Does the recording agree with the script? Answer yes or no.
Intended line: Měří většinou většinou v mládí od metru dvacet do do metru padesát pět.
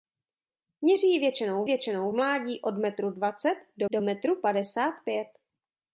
yes